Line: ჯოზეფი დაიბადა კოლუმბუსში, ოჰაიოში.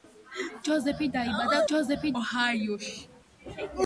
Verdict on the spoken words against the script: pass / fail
fail